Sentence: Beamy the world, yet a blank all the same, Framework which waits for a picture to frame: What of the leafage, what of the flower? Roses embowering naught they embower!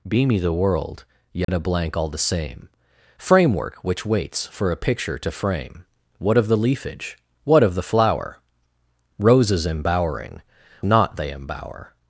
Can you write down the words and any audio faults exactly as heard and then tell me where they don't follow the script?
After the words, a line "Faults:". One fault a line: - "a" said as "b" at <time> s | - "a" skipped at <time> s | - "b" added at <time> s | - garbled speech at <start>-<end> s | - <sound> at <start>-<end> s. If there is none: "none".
Beamy the world, yet a blank all the same, Framework which waits for a picture to frame: What of the leafage, what of the flower? Roses embowering naught they embower!
Faults:
- dropout at 1.4-1.5 s